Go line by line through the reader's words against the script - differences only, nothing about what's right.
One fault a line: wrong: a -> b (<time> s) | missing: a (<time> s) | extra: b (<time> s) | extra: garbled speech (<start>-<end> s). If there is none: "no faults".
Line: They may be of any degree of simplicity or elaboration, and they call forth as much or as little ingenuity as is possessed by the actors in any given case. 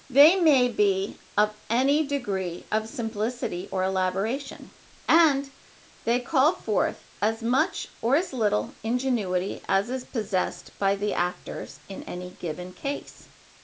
no faults